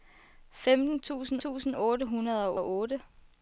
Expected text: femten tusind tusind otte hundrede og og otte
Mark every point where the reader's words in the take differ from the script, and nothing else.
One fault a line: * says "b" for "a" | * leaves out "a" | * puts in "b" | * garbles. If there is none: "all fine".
all fine